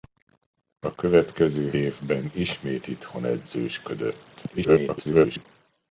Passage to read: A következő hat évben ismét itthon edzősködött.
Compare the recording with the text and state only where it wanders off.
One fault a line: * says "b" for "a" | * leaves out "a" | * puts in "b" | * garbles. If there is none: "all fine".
* leaves out "hat"
* garbles